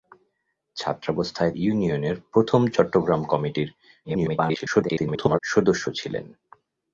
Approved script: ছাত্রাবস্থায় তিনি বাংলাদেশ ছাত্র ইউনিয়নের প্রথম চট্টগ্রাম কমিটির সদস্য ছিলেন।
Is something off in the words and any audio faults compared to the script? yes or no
yes